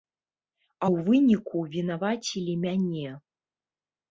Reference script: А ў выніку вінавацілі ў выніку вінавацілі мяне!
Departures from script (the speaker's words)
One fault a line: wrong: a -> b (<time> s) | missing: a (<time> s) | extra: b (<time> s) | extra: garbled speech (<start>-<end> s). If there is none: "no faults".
missing: ў выніку вінавацілі (2.5 s)